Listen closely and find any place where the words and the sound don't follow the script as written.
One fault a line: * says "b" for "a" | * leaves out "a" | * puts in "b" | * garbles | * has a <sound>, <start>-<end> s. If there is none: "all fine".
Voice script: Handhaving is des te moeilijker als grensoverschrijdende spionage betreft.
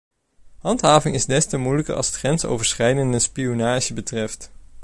* puts in "het"